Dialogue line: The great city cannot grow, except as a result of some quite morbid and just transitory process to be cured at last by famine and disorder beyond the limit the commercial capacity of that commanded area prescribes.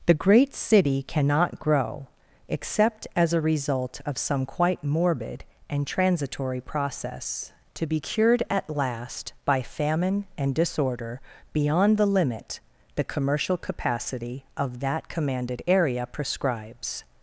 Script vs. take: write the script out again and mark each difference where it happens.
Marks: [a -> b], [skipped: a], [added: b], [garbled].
The great city cannot grow, except as a result of some quite morbid and [skipped: just] transitory process to be cured at last by famine and disorder beyond the limit the commercial capacity of that commanded area prescribes.